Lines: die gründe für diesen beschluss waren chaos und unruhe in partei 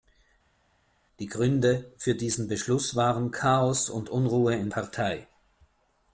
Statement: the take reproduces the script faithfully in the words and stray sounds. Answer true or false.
true